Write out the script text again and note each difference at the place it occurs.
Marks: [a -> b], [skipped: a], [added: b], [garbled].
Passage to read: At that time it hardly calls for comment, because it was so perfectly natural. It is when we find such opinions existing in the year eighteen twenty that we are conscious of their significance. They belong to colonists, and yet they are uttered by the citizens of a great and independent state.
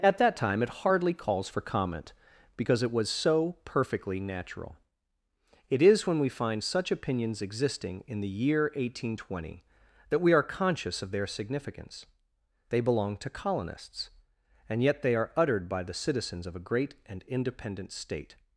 At that time it hardly calls for comment, because it was so perfectly natural. It is when we find such opinions existing in the year eighteen twenty that we are conscious of their significance. They belong to colonists, and yet they are uttered by the citizens of a great and independent state.